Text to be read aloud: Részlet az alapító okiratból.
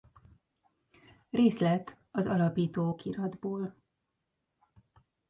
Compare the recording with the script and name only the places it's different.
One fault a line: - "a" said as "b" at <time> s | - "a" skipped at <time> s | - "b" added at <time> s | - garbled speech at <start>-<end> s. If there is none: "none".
none